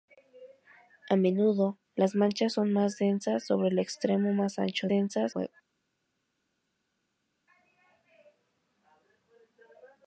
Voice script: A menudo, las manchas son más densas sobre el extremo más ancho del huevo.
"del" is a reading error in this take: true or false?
true